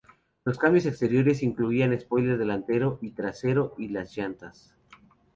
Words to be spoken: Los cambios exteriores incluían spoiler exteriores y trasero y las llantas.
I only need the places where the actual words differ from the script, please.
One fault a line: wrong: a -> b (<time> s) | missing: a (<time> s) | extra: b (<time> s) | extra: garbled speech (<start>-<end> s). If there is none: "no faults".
wrong: exteriores -> delantero (2.4 s)